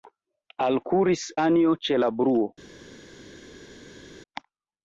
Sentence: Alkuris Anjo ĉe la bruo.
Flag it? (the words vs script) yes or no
no